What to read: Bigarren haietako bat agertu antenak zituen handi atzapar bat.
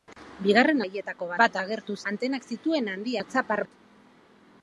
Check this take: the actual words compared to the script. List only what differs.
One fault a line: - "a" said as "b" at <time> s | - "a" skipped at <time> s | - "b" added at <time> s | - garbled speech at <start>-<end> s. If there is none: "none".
none